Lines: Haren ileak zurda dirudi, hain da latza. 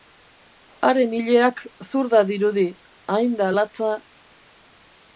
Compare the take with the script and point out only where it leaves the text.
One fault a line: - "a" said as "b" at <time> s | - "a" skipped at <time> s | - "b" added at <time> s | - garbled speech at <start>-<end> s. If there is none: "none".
none